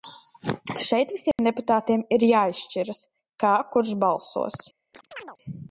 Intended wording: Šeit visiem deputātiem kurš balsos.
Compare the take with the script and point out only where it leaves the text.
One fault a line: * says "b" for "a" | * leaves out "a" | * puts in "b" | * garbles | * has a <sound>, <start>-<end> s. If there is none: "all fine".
* has a dropout, 1.3-1.4 s
* puts in "ir jāizšķiras kā"
* has a chirp, 4.9-5.4 s